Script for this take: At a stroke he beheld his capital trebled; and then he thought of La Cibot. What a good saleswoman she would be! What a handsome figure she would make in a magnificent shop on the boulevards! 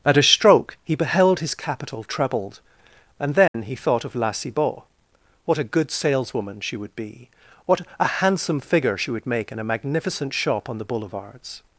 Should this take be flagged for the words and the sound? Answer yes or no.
yes